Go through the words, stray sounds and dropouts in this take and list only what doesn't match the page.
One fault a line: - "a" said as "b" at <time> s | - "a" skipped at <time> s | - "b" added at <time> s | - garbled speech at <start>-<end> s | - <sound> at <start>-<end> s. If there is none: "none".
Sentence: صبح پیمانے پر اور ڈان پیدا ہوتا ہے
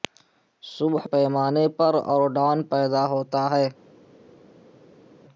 none